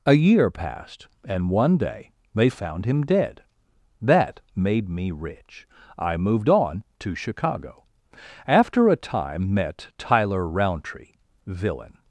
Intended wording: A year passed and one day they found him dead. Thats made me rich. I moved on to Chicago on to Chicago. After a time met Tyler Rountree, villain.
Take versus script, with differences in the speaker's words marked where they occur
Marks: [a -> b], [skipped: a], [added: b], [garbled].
A year passed and one day they found him dead. [Thats -> That] made me rich. I moved on to Chicago [skipped: on to Chicago.] After a time met Tyler Rountree, villain.